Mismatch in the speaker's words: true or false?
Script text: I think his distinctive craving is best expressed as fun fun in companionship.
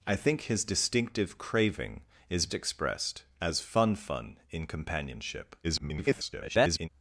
true